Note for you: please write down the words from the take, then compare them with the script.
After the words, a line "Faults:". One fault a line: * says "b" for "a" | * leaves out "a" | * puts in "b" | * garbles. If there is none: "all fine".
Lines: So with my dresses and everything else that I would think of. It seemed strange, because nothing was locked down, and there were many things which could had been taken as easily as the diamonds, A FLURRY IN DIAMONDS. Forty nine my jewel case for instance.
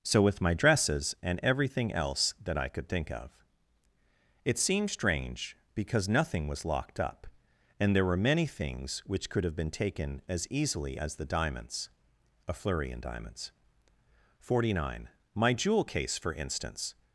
So with my dresses and everything else that I could think of. It seemed strange, because nothing was locked up, and there were many things which could have been taken as easily as the diamonds, A FLURRY IN DIAMONDS. Forty nine my jewel case for instance.
Faults:
* says "could" for "would"
* says "up" for "down"
* says "have" for "had"